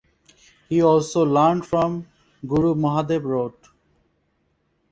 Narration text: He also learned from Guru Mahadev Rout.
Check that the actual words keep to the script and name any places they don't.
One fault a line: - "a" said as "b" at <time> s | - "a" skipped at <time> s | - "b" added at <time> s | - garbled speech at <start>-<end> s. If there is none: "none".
none